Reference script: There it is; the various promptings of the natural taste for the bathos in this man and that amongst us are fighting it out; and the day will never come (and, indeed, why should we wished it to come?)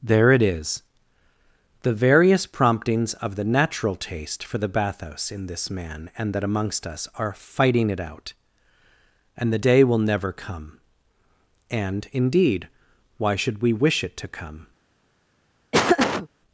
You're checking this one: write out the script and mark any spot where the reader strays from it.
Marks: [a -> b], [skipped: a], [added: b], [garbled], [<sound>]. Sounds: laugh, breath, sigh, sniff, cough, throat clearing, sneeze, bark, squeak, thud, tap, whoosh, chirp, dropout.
There it is; the various promptings of the natural taste for the bathos in this man and that amongst us are fighting it out; and the day will never come (and, indeed, why should we [wished -> wish] it to come?) [laugh]